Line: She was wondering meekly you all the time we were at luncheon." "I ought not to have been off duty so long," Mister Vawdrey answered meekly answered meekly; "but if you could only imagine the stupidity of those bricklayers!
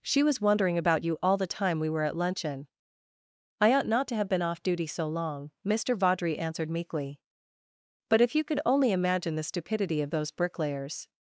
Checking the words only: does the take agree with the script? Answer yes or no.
no